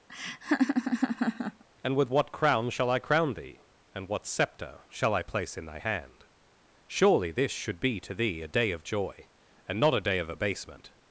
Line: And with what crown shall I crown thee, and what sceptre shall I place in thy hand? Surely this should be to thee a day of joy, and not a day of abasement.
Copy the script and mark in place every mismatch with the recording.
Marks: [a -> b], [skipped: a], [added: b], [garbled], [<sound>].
[laugh] And with what crown shall I crown thee, and what sceptre shall I place in thy hand? Surely this should be to thee a day of joy, and not a day of abasement.